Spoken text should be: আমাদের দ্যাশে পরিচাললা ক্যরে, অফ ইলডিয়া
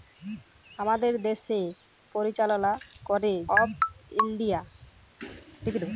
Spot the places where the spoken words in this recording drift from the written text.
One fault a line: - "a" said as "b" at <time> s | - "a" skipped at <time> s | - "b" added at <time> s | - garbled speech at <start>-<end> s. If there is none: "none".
none